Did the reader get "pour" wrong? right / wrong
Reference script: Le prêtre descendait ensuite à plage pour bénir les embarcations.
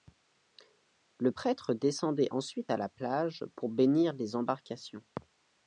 right